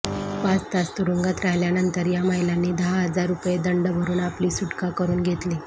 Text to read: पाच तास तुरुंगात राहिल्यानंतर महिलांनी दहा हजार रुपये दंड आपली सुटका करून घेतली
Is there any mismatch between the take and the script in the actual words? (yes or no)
yes